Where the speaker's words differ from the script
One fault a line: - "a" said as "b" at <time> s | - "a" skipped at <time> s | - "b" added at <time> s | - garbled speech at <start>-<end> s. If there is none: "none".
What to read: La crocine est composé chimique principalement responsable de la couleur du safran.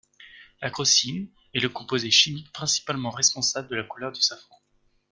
- "le" added at 1.6 s